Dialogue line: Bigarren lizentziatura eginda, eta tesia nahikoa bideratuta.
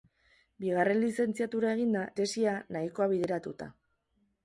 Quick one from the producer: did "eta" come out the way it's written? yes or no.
no